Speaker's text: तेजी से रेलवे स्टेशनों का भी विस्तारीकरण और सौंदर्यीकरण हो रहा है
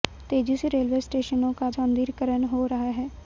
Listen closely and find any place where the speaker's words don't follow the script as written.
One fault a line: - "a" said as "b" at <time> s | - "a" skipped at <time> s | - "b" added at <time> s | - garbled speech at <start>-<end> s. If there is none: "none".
- "भी विस्तारीकरण और" skipped at 1.7 s